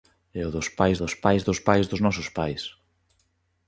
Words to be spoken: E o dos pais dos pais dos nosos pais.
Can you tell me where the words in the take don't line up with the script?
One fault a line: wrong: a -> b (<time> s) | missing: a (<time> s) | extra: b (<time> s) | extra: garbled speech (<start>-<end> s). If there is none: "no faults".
extra: pais dos (1.6 s)